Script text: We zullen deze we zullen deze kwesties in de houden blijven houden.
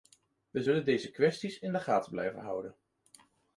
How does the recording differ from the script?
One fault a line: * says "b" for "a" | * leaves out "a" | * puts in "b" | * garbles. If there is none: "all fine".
* leaves out "we zullen deze"
* says "gaten" for "houden"